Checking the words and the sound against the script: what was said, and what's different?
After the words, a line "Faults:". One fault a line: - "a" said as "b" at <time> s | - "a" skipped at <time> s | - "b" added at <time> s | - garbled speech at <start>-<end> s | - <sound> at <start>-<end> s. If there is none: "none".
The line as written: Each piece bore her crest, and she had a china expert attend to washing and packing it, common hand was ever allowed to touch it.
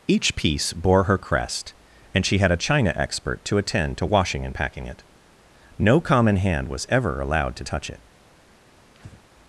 Each piece bore her crest, and she had a china expert to attend to washing and packing it, no common hand was ever allowed to touch it.
Faults:
- "to" added at 3.5 s
- "no" added at 5.8 s
- breath at 8.9-9.2 s